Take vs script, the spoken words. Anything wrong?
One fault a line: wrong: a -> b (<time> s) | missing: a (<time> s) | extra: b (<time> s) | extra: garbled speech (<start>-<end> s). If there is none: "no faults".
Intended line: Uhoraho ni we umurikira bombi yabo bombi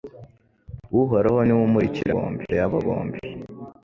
no faults